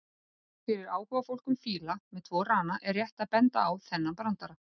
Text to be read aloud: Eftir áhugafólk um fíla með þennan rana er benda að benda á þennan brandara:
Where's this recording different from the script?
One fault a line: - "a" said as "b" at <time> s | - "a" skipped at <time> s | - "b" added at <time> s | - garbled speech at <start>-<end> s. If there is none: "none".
- "Eftir" said as "Fyrir" at 0.7 s
- "þennan" said as "tvo" at 2.3 s
- "benda" said as "rétt" at 3.0 s